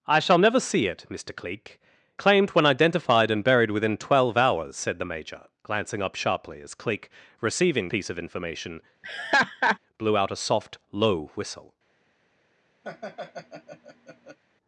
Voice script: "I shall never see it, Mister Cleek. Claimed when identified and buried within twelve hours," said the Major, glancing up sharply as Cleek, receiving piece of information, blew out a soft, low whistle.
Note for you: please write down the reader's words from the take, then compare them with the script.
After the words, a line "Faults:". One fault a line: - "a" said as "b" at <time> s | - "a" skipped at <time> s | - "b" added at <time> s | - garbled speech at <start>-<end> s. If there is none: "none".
"I shall never see it, Mister Cleek. Claimed when identified and buried within twelve hours," said the Major, glancing up sharply as Cleek, receiving piece of information, blew out a soft, low whistle.
Faults:
none